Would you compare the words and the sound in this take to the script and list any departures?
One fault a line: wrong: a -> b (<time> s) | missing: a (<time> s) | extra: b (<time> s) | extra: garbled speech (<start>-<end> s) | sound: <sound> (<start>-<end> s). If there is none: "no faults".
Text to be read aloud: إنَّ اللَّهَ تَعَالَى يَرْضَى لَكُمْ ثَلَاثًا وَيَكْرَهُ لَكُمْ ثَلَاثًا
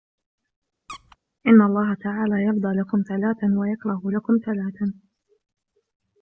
sound: squeak (0.9-1.2 s)